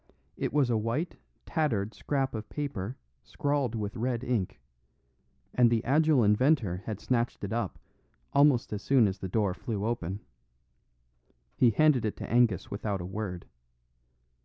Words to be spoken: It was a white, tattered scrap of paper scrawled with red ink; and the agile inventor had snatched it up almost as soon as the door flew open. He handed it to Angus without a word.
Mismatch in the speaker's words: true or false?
false